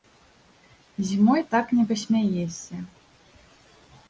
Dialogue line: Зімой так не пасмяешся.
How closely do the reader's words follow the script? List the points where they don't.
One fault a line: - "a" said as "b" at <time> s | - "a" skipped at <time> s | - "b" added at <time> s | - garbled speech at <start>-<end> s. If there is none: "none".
none